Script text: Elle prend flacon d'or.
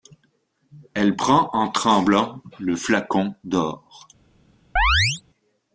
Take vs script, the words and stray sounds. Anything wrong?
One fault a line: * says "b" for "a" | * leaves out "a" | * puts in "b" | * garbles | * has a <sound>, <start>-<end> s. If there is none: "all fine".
* puts in "en tremblant le"
* has a chirp, 4.8-5.2 s